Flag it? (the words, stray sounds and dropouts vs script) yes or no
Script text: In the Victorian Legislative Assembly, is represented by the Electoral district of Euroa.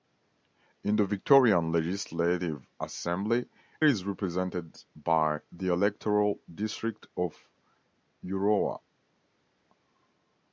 no